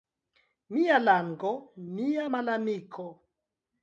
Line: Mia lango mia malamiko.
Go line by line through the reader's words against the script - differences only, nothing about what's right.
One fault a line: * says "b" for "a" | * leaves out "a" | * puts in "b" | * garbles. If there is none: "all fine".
all fine